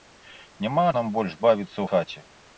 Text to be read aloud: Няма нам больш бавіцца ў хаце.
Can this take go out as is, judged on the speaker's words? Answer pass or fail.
pass